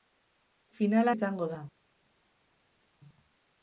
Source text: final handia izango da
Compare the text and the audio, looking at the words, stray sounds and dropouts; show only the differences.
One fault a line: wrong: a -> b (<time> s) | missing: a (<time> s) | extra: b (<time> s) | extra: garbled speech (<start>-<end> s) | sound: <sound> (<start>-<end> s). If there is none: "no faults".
missing: handia (1.1 s)